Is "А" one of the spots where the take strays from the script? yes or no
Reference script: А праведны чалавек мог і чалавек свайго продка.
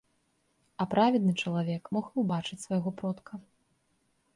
no